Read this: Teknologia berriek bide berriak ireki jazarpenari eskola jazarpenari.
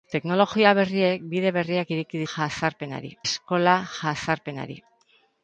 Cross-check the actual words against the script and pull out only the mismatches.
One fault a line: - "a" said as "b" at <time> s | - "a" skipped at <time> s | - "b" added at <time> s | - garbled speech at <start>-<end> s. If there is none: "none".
none